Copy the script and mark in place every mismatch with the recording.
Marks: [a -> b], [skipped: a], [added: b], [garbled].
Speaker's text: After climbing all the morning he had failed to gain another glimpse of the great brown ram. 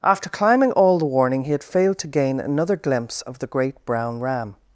After climbing all the [morning -> warning] he had failed to gain another glimpse of the great brown ram.